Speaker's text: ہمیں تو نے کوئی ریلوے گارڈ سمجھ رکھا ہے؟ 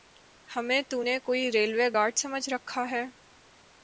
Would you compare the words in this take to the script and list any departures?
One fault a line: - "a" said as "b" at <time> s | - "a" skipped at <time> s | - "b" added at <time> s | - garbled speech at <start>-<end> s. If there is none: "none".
none